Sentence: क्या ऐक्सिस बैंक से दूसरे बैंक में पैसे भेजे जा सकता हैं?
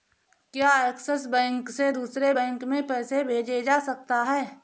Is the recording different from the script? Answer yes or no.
no